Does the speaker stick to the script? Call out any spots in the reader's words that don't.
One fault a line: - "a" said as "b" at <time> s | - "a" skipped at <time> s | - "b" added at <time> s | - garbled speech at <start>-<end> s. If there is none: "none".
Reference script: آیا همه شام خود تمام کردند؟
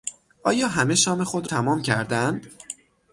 none